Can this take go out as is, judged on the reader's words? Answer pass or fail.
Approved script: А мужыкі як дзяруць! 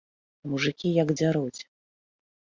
pass